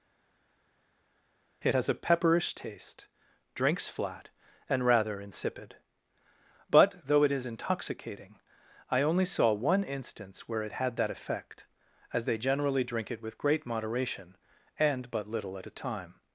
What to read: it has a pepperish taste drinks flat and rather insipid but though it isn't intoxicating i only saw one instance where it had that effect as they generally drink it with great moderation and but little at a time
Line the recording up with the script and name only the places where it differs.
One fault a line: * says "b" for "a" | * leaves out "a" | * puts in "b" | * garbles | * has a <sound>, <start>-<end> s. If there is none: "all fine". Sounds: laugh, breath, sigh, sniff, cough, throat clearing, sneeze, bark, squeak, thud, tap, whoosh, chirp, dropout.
* says "is" for "isn't"